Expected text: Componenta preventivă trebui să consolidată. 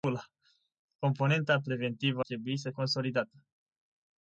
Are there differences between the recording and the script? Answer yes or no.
no